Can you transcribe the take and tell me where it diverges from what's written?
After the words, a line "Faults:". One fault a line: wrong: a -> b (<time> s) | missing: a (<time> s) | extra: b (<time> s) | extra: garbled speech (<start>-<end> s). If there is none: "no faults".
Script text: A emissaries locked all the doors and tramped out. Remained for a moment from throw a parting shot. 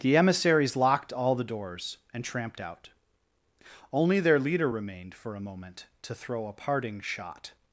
The emissaries locked all the doors and tramped out. Only their leader remained for a moment to throw a parting shot.
Faults:
wrong: A -> The (0.0 s)
extra: Only their leader (3.9 s)
wrong: from -> to (6.0 s)